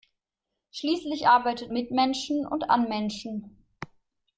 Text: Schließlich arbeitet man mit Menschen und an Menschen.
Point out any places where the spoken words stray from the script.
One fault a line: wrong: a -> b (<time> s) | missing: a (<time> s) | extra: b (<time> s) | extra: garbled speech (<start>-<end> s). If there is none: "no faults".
missing: man (1.7 s)